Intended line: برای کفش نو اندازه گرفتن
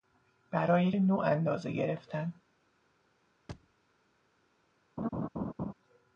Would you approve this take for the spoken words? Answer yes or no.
no